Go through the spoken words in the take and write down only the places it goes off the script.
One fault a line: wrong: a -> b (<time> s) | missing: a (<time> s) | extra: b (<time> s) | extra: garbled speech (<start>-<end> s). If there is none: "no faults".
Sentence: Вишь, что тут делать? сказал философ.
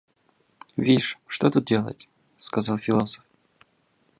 no faults